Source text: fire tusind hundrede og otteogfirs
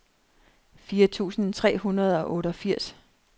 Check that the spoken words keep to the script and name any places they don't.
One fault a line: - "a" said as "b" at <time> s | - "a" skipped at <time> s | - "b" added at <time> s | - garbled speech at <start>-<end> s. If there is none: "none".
- "tre" added at 1.5 s